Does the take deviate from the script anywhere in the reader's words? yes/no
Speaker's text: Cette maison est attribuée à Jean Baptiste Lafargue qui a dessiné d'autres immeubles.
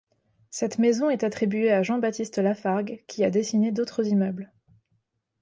no